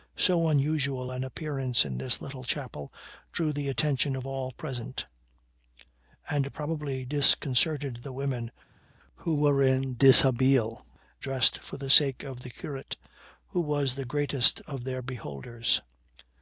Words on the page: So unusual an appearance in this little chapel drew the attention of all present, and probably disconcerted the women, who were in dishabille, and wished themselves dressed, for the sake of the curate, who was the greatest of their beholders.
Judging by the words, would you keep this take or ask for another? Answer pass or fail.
fail